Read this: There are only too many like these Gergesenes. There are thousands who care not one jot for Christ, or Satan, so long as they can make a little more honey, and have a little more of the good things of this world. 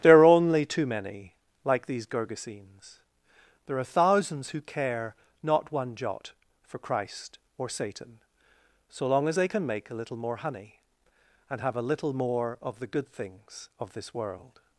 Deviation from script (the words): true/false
false